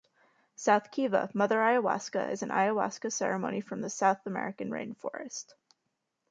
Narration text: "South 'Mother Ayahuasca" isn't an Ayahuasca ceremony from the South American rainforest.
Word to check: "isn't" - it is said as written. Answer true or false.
false